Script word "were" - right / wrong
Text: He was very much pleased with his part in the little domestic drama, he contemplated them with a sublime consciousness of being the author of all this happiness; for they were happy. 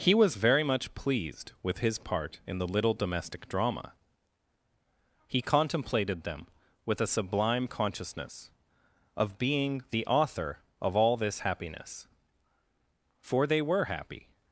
right